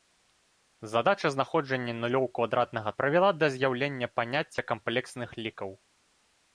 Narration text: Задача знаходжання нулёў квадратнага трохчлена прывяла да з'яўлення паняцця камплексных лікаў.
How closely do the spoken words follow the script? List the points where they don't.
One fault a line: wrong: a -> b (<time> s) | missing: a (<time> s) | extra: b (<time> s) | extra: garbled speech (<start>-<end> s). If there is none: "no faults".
missing: трохчлена (2.9 s)